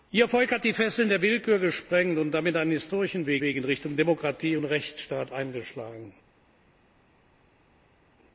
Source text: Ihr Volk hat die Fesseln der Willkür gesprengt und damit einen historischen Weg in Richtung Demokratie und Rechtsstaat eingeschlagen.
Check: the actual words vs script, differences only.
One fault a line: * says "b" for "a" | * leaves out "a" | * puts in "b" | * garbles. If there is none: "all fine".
* puts in "Weg"